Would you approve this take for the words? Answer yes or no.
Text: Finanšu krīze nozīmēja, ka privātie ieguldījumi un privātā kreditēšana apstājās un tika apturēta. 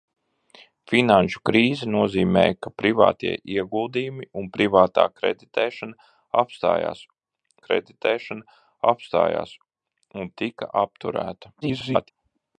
no